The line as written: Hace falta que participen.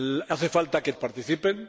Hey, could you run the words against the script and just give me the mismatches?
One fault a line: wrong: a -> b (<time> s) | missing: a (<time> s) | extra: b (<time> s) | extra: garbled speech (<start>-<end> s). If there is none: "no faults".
no faults